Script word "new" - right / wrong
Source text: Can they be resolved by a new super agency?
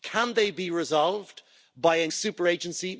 wrong